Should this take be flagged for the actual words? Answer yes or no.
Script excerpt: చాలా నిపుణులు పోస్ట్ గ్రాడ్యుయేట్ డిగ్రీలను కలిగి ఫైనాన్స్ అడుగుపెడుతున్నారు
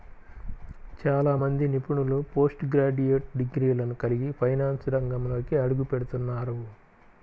yes